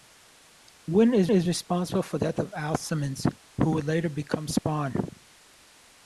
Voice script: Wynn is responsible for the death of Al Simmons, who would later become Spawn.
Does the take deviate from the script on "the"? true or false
true